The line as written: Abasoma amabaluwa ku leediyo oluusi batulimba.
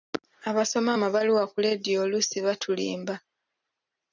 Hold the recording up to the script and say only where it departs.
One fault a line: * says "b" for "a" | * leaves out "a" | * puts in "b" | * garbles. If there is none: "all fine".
all fine